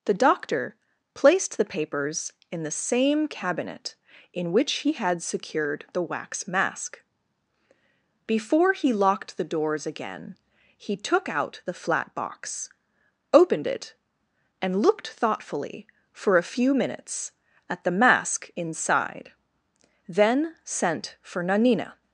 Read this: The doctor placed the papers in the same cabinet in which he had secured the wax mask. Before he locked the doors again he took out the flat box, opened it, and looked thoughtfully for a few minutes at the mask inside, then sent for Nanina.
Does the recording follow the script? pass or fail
pass